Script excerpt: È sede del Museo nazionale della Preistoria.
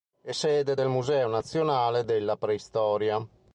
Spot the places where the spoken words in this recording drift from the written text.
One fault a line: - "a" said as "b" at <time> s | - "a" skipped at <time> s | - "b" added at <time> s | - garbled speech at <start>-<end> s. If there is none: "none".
none